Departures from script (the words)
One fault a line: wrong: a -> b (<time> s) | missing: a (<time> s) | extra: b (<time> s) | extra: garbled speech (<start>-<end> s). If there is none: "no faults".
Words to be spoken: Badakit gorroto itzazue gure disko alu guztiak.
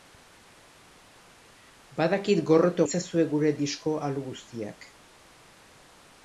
no faults